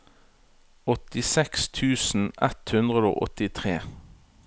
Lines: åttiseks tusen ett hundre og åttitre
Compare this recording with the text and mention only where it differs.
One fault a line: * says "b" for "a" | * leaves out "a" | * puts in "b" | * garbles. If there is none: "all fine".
all fine